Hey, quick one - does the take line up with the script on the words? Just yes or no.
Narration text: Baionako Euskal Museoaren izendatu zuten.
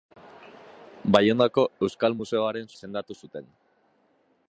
yes